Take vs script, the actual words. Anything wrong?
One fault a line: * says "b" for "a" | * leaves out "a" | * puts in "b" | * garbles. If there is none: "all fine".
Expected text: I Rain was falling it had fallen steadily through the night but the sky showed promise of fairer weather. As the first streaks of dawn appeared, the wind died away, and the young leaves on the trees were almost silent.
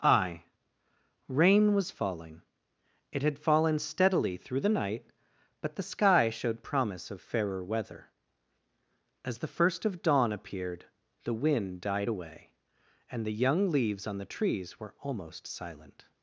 * leaves out "streaks"